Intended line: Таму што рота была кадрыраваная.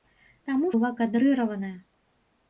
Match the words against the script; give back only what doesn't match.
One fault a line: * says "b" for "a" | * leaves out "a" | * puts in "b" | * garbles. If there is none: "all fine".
* leaves out "што рота"